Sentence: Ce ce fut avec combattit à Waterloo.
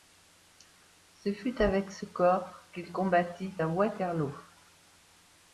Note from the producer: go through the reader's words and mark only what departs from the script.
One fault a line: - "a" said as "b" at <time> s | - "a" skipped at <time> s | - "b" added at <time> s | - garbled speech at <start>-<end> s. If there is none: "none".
- "fut avec" added at 1.3 s
- "fut avec" said as "corps qu'il" at 2.1 s